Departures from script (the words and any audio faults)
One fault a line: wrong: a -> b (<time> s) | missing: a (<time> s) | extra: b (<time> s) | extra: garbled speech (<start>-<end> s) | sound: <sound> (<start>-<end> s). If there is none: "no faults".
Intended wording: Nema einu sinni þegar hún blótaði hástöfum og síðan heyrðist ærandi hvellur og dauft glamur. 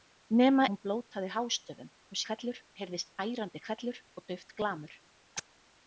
missing: einu sinni þegar (0.6 s)
wrong: síðan -> hvellur (2.3 s)
sound: chirp (5.4-5.5 s)